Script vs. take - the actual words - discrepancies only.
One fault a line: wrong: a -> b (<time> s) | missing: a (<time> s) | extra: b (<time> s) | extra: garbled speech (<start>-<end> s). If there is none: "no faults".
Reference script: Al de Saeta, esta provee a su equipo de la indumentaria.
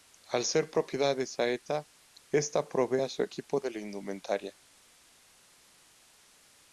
extra: ser propiedad (0.5 s)